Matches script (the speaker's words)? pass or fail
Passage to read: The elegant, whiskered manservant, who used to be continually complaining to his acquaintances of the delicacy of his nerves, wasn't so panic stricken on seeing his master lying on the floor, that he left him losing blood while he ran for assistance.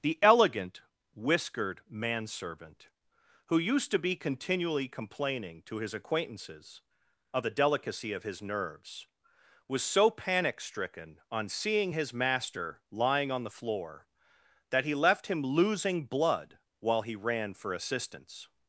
fail